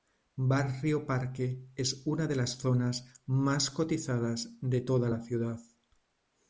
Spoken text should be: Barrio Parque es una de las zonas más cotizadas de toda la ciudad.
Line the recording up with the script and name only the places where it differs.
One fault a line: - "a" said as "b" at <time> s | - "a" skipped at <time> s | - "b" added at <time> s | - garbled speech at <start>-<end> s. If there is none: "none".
none